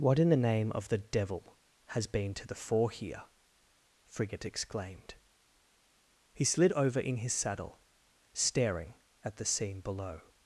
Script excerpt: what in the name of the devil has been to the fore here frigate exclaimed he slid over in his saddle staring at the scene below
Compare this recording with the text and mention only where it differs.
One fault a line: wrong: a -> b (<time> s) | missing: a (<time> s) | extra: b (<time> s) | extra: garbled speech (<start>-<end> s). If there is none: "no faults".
no faults